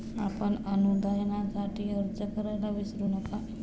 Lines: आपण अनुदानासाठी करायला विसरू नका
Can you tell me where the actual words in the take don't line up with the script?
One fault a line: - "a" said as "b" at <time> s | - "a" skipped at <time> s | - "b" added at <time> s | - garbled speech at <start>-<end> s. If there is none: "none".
- "अर्ज" added at 1.9 s